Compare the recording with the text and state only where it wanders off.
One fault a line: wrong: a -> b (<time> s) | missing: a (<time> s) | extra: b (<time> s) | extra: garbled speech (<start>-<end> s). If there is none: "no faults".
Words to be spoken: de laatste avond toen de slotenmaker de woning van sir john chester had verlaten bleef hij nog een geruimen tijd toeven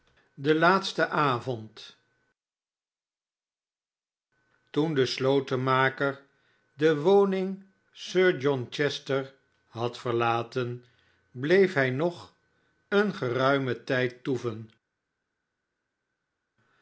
missing: van (7.6 s)